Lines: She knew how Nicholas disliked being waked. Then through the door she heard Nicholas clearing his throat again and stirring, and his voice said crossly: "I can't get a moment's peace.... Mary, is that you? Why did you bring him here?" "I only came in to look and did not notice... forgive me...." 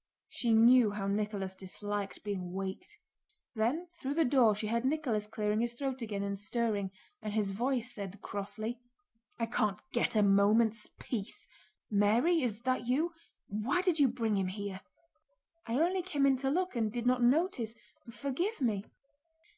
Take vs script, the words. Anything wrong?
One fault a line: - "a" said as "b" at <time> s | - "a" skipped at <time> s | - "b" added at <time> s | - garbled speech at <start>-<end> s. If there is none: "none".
none